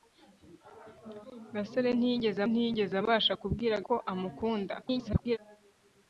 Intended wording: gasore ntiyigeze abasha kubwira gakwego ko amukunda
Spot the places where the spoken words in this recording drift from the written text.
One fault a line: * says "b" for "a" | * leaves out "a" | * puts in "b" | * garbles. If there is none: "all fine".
* puts in "ntiyigeze"
* leaves out "gakwego"
* garbles